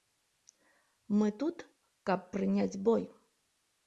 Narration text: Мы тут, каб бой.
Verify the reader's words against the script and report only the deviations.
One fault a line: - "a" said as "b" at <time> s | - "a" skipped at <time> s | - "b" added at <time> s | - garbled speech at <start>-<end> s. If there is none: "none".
- "прыняць" added at 2.4 s